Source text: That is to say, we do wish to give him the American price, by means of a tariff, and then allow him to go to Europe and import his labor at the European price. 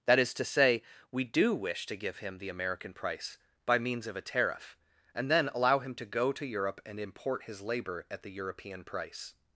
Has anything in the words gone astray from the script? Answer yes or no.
no